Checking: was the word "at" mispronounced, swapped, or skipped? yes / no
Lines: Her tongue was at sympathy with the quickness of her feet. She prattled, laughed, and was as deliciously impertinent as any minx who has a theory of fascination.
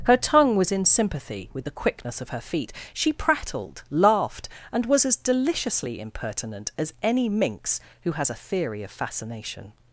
yes